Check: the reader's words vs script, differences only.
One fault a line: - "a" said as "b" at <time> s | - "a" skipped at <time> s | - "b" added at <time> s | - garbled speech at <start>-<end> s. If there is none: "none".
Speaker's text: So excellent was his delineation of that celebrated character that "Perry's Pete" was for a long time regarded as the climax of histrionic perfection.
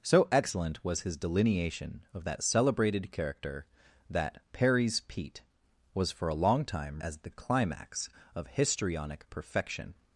- "regarded" skipped at 7.0 s